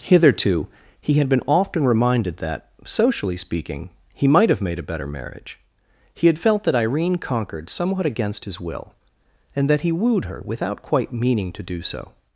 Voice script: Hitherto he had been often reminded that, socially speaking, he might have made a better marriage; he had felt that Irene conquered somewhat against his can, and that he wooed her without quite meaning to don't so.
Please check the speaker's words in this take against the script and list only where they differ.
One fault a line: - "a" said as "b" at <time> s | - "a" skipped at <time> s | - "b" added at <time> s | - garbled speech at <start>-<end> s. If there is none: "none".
- "can" said as "will" at 8.6 s
- "don't" said as "do" at 11.6 s